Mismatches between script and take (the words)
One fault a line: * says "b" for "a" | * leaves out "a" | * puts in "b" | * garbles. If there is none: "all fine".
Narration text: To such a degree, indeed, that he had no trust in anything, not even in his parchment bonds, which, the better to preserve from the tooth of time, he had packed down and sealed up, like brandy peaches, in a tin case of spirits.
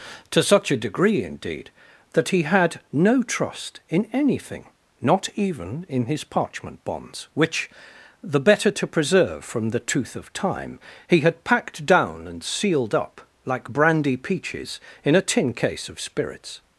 all fine